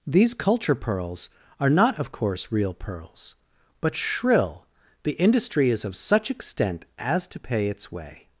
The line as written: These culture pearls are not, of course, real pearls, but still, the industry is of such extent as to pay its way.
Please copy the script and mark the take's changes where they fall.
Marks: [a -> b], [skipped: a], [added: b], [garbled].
These culture pearls are not, of course, real pearls, but [still, -> shrill] the industry is of such extent as to pay its way.